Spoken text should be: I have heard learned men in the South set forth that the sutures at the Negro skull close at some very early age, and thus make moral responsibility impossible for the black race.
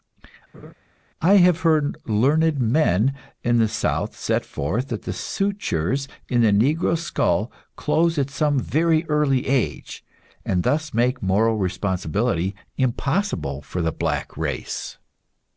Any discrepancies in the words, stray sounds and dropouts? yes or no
yes